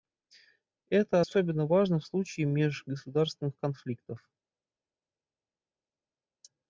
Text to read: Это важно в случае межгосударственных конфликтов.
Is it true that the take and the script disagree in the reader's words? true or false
true